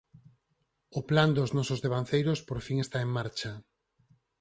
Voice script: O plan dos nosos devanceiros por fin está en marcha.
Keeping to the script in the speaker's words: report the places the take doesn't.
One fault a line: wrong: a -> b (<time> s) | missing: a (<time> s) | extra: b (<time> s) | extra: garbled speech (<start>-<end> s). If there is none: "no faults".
no faults